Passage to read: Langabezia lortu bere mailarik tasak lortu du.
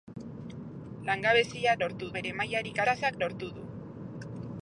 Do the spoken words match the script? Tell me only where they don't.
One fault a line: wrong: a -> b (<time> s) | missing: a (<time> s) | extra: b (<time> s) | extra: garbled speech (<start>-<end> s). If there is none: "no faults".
no faults